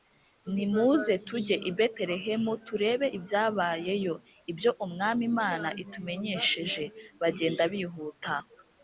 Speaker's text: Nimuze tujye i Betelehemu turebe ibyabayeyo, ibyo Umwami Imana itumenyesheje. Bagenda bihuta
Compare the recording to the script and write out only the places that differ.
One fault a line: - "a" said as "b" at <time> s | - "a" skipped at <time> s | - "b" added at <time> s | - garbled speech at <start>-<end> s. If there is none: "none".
none